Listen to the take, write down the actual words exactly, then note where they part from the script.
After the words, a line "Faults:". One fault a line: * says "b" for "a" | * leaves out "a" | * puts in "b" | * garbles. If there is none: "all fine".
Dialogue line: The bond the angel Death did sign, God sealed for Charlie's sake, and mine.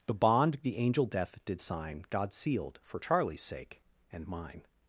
The bond the angel Death did sign, God sealed for Charlie's sake, and mine.
Faults:
all fine